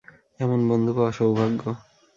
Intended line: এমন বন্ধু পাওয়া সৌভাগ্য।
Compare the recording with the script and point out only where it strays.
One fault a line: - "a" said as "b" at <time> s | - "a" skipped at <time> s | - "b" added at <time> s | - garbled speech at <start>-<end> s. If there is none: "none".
none